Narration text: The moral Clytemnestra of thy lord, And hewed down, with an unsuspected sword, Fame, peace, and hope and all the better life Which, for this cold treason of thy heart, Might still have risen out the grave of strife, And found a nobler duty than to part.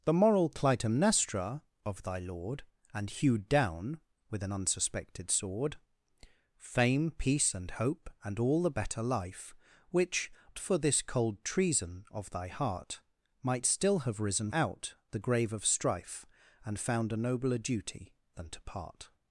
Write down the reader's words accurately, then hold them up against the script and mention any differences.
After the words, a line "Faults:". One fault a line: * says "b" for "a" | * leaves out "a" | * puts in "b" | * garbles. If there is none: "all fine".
The moral Clytemnestra of thy lord, And hewed down, with an unsuspected sword, Fame, peace, and hope and all the better life Which, for this cold treason of thy heart, Might still have risen out the grave of strife, And found a nobler duty than to part.
Faults:
all fine